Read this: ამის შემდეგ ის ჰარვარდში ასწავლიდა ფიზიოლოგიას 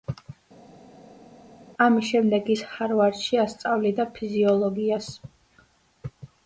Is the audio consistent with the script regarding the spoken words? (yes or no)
yes